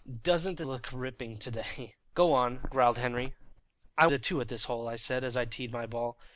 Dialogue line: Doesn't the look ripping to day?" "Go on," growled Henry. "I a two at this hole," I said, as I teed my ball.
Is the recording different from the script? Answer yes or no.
no